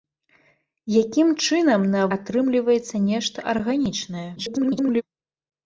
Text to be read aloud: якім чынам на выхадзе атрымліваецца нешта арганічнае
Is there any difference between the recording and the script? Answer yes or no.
yes